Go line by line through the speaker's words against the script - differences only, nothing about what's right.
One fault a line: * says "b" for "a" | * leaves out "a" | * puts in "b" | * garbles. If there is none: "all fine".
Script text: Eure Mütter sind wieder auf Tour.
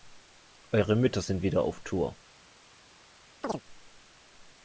all fine